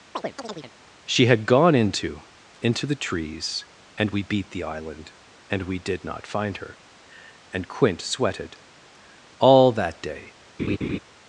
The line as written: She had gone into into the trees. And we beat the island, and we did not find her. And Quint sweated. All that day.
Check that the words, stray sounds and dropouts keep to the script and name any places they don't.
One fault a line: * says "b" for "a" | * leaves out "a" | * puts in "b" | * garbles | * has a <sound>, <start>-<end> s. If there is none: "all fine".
* has a chirp, 0.1-0.7 s
* has a laugh, 10.6-11.0 s